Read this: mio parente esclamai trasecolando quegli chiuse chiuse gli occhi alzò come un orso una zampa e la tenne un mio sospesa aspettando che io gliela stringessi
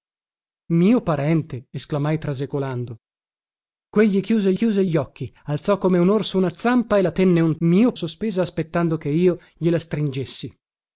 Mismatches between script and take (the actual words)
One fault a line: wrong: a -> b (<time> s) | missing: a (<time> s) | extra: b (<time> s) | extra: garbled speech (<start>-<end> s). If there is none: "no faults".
no faults